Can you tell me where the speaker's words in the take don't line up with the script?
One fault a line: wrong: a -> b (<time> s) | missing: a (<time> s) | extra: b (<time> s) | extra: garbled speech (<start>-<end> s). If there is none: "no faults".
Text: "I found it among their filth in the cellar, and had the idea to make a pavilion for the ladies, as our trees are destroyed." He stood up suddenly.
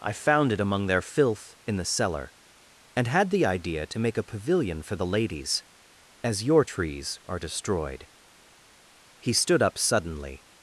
wrong: our -> your (6.4 s)